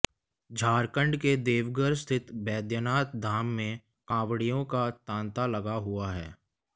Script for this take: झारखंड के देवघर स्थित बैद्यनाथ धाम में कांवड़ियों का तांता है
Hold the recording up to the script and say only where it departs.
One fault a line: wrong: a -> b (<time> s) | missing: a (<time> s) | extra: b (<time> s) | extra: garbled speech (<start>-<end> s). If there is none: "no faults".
extra: लगा हुआ (5.5 s)